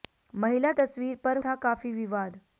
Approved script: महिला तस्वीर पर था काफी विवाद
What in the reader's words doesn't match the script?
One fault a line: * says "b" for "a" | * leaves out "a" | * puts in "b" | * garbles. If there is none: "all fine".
all fine